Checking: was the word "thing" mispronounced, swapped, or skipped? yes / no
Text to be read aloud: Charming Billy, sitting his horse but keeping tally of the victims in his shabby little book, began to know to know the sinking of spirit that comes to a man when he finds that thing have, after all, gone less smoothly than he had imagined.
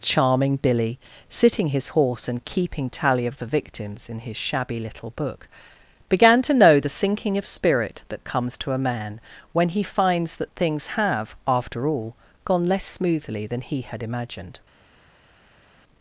yes